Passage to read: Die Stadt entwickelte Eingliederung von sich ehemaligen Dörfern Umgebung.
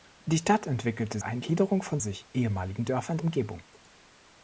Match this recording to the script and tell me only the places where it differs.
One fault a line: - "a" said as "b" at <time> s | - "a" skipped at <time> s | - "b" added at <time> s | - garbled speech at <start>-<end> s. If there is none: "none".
none